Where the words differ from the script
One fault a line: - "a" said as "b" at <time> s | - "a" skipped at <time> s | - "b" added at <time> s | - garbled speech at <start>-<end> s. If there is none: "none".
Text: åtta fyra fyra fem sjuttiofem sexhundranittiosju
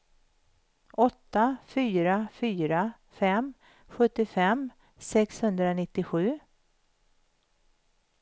none